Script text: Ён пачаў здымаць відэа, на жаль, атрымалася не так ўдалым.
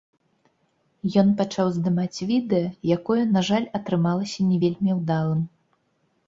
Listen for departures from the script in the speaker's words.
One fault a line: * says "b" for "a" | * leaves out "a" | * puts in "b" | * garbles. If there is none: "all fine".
* puts in "якое"
* says "вельмі" for "так"